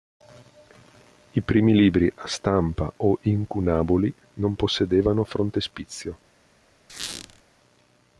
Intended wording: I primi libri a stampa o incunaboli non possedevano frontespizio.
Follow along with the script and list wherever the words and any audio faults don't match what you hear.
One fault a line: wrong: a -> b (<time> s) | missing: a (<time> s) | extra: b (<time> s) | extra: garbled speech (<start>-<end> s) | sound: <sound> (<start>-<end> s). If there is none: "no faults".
sound: squeak (6.9-7.4 s)